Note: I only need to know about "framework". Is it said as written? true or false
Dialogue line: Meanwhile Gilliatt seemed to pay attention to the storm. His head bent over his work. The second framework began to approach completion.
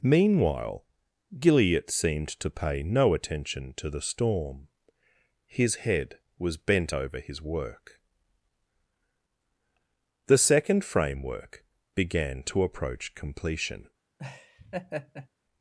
true